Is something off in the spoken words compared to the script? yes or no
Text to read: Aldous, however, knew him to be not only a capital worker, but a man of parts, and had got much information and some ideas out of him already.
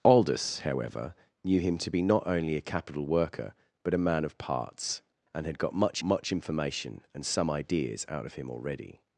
yes